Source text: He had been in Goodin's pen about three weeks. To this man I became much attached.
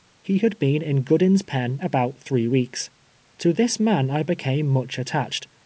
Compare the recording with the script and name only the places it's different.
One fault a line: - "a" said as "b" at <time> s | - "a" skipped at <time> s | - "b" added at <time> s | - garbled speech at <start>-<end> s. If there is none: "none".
none